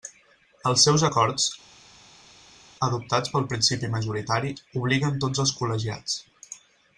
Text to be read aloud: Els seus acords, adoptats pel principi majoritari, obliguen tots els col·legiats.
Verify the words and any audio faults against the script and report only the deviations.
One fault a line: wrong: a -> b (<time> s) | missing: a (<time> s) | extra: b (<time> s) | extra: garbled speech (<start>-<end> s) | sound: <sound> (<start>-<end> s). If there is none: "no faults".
no faults